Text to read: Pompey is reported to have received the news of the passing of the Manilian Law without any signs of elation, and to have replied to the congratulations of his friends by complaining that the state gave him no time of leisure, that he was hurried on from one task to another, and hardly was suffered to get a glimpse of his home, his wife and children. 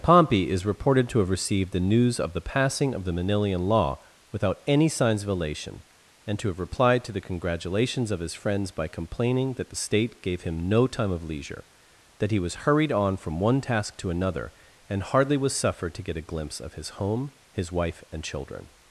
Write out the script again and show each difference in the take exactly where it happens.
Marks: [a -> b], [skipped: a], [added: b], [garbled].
Pompey is reported to have received the news of the passing of the Manilian Law without any signs of elation, and to have replied to the congratulations of his friends by complaining that the state gave him no time of leisure, that he was hurried on from one task to another, and hardly was suffered to get a glimpse of his home, his wife and children.